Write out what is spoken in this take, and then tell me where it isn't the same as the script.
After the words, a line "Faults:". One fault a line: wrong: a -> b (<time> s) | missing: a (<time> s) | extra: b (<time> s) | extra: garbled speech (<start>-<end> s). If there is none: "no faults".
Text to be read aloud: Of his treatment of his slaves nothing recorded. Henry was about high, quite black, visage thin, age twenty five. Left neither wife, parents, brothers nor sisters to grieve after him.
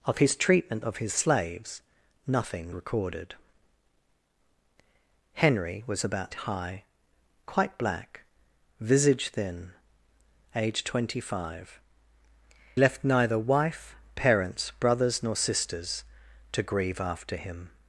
Of his treatment of his slaves nothing recorded. Henry was about high, quite black, visage thin, age twenty five. Left neither wife, parents, brothers nor sisters to grieve after him.
Faults:
no faults